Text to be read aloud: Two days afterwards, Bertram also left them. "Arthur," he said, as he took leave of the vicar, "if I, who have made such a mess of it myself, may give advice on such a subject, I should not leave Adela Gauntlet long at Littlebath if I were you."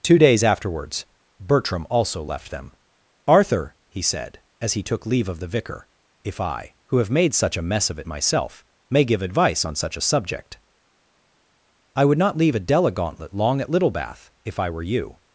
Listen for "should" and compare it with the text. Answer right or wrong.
wrong